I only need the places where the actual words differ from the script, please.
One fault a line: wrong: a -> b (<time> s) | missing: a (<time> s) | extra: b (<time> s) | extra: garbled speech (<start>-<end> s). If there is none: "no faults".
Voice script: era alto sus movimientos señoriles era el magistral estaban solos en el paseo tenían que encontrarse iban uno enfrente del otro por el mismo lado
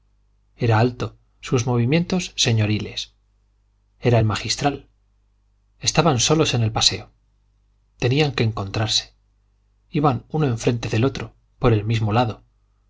no faults